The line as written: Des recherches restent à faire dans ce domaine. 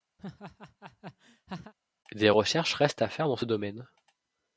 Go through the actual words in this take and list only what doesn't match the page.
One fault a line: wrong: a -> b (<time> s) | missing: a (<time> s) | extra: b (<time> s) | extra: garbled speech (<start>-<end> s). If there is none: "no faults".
no faults